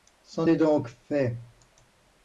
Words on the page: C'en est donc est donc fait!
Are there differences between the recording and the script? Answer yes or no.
yes